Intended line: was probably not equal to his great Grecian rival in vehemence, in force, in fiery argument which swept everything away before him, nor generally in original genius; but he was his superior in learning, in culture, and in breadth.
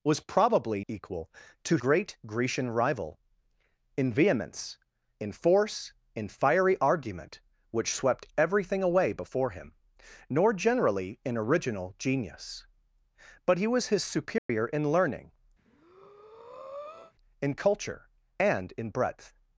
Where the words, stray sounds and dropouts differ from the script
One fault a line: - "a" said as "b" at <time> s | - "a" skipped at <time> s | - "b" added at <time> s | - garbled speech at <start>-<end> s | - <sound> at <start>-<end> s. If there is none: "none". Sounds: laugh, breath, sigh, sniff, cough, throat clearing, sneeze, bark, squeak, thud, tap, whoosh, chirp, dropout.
- "not" skipped at 0.8 s
- "his" skipped at 1.8 s
- dropout at 14.4-14.5 s
- breath at 15.6-17.1 s